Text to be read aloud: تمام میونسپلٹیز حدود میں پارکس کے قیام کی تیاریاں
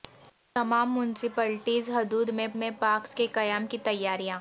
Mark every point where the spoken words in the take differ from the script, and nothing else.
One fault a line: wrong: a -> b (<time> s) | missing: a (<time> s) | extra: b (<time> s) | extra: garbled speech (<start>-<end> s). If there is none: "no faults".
extra: میں (2.5 s)